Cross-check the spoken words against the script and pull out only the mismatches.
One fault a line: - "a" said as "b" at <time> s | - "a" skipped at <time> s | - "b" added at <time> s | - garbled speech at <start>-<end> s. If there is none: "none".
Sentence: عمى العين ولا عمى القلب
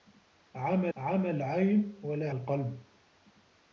- "عمى" added at 1.0 s
- "عمى" skipped at 2.3 s